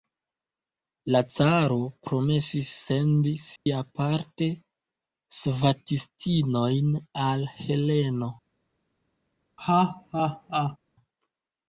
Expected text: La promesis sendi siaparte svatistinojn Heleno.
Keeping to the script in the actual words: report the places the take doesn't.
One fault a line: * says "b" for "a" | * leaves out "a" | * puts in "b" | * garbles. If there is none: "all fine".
* puts in "caro"
* puts in "al"